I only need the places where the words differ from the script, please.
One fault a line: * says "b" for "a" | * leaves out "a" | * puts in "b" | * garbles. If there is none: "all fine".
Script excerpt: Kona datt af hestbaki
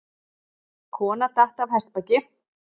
all fine